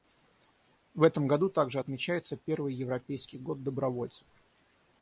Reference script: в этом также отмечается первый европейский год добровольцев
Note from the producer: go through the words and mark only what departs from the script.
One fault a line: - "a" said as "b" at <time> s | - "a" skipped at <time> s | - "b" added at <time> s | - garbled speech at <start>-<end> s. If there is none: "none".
- "году" added at 1.3 s